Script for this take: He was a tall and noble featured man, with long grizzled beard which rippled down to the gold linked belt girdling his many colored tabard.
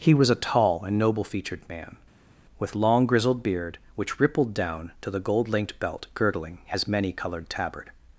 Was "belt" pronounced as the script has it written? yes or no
yes